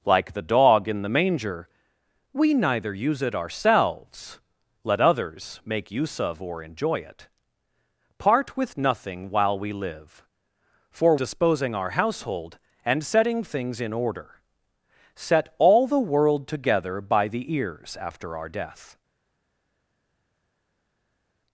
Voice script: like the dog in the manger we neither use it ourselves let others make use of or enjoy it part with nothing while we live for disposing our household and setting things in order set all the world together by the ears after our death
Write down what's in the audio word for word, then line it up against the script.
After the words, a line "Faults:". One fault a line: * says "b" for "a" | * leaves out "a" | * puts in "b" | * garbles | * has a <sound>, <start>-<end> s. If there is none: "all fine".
like the dog in the manger we neither use it ourselves let others make use of or enjoy it part with nothing while we live for disposing our household and setting things in order set all the world together by the ears after our death
Faults:
all fine